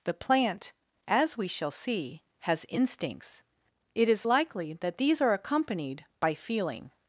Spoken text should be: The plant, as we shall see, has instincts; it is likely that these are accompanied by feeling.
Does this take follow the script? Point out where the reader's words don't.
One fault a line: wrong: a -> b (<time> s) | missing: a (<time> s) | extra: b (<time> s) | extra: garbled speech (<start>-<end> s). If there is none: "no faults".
no faults